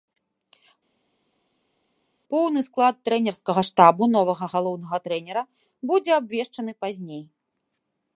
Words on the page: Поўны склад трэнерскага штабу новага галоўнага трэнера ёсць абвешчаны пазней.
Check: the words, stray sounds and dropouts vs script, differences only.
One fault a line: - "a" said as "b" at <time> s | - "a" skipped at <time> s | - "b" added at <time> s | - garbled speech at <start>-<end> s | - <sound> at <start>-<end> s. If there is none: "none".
- "ёсць" said as "будзе" at 5.9 s